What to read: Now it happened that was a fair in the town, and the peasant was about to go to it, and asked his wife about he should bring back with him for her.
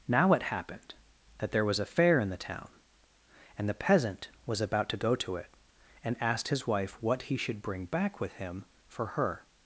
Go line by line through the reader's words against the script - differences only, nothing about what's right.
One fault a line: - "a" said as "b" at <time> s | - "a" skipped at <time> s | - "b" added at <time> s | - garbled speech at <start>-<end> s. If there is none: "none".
- "there" added at 1.5 s
- "about" said as "what" at 7.0 s